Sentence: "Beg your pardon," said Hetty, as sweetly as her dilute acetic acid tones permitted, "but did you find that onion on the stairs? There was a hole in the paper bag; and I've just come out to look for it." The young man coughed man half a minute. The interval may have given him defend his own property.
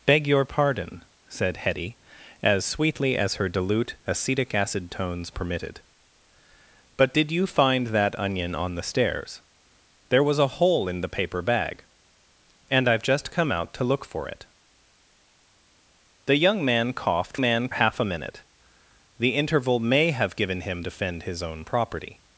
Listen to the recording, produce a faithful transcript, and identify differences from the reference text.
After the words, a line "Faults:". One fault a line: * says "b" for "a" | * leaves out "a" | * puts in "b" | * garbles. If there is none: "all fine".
"Beg your pardon," said Hetty, as sweetly as her dilute acetic acid tones permitted, "but did you find that onion on the stairs? There was a hole in the paper bag; and I've just come out to look for it." The young man coughed man half a minute. The interval may have given him defend his own property.
Faults:
all fine